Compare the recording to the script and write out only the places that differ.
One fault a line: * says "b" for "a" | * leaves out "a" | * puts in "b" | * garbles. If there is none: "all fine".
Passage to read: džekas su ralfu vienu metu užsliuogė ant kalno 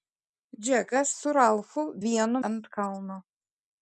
* leaves out "metu užsliuogė"